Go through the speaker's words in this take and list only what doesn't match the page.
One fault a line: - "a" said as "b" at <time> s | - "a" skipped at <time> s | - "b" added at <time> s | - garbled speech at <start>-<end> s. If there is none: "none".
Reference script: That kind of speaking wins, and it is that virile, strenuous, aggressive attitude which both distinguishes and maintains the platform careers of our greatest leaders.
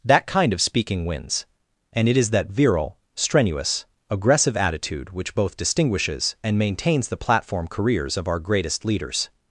none